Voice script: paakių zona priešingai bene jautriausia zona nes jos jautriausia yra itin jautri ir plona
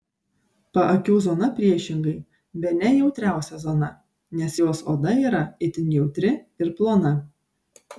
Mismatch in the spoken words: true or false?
true